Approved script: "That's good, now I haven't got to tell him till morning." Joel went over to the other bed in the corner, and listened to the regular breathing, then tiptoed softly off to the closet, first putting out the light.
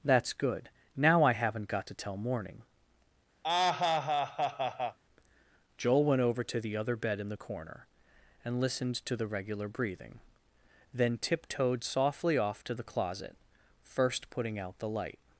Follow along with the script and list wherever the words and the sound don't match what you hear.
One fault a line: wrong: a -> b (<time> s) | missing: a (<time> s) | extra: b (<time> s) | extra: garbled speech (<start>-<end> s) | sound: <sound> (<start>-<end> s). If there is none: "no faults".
missing: him till (2.2 s)
sound: laugh (3.4-5.0 s)